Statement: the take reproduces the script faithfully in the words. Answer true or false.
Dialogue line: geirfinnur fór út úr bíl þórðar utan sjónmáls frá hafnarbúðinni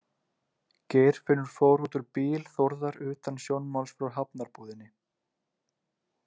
true